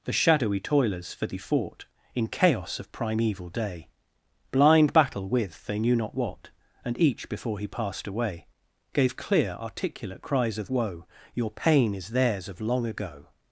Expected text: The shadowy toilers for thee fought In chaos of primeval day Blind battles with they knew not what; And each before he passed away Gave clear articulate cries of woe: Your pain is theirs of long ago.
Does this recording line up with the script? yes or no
no